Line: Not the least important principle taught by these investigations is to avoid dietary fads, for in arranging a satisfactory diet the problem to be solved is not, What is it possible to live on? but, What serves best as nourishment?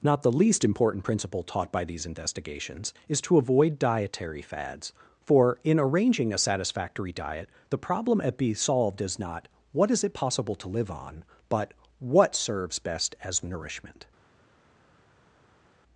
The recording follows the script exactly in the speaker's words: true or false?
false